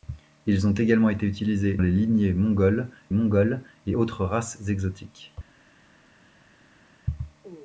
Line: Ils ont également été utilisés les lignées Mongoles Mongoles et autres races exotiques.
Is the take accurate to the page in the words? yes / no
yes